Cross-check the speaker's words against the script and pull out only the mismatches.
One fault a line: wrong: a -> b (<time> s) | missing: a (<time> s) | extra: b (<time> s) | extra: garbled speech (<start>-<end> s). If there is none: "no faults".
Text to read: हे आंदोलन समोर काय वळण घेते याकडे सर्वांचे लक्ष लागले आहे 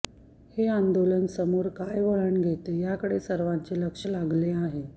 no faults